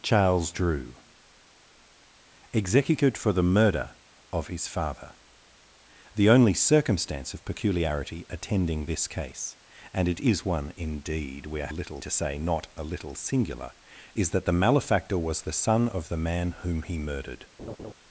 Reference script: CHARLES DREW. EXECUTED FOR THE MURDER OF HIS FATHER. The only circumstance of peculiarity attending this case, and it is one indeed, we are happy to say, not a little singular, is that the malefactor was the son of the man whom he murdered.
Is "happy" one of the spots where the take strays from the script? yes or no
yes